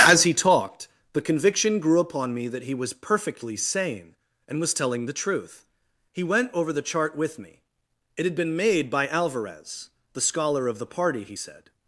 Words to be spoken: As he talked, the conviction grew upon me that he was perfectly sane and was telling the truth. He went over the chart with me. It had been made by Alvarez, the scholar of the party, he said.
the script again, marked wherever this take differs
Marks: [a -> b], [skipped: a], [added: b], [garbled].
As he talked, the conviction grew upon me that he was perfectly sane and was telling the truth. He went over the chart with me. It had been made by Alvarez, the scholar of the party, he said.